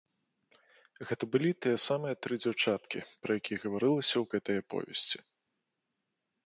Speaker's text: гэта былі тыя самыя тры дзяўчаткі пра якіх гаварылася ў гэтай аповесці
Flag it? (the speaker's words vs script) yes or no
no